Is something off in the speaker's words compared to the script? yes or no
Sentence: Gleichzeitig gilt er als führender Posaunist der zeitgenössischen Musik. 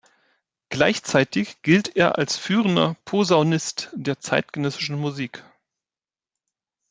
no